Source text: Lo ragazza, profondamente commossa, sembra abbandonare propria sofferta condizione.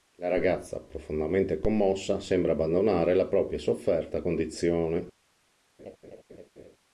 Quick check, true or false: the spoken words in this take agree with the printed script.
false